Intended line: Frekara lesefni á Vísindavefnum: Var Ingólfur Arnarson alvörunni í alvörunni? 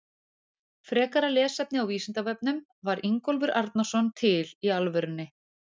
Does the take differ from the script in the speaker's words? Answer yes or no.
yes